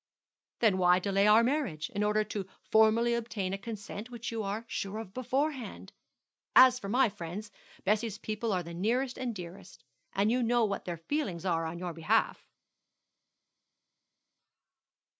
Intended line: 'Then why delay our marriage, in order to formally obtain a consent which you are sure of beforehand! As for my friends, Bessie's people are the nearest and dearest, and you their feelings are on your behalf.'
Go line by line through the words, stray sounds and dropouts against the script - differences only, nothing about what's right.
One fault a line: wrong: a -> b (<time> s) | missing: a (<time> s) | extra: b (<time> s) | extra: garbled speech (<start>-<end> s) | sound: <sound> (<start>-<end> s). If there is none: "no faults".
extra: know what (10.4 s)